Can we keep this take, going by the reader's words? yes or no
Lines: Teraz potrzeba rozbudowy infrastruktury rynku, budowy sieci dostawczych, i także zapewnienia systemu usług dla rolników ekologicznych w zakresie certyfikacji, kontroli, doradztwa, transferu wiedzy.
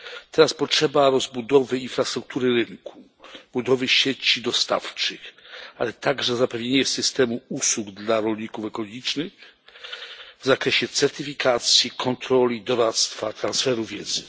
no